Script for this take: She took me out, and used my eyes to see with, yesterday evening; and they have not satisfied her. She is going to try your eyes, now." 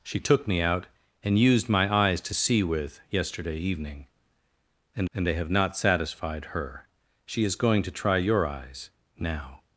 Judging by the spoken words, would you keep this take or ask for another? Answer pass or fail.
fail